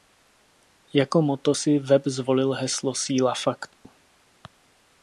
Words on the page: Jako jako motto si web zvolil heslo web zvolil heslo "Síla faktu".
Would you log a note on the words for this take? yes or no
yes